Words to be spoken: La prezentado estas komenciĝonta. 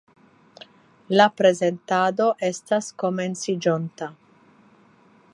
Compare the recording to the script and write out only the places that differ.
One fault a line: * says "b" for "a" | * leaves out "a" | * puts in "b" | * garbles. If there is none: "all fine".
all fine